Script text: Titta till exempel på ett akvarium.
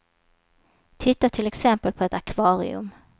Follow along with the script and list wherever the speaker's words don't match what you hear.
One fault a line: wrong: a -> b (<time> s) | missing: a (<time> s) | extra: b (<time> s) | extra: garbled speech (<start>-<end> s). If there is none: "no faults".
no faults